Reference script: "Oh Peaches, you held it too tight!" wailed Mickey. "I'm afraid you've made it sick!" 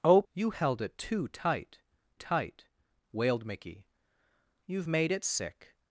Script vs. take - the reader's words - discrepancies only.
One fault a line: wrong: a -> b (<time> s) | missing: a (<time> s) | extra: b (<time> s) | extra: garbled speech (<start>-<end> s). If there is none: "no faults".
missing: Peaches (0.2 s)
extra: tight (2.1 s)
missing: I'm afraid (3.9 s)